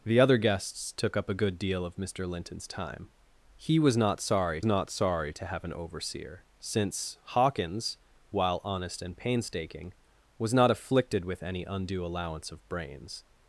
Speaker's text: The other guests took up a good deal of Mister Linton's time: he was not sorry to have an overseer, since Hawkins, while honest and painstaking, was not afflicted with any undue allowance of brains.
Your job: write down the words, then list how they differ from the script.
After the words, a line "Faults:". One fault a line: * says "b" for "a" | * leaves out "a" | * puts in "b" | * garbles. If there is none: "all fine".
The other guests took up a good deal of Mister Linton's time: he was not sorry not sorry to have an overseer, since Hawkins, while honest and painstaking, was not afflicted with any undue allowance of brains.
Faults:
* puts in "not sorry"